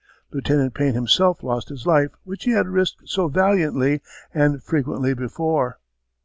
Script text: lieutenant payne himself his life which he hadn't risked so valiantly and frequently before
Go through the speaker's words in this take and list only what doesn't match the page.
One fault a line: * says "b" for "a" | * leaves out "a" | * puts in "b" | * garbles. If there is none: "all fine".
* puts in "lost"
* says "had" for "hadn't"